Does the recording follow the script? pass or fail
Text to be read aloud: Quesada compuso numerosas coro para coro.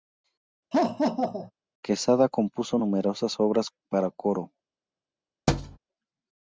fail